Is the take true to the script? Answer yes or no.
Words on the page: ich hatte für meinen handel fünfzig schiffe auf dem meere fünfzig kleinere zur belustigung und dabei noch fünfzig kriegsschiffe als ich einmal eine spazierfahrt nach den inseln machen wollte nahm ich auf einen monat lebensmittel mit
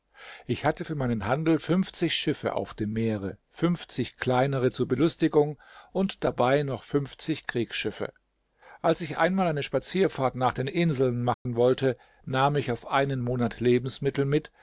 yes